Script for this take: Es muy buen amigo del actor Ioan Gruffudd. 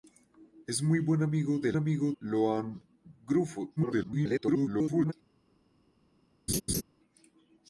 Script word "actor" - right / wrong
wrong